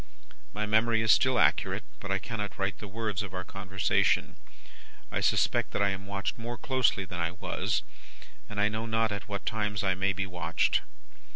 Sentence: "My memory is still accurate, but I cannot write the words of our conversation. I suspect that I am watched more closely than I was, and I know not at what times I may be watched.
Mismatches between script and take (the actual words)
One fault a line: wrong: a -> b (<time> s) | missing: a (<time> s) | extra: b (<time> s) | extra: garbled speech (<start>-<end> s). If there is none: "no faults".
no faults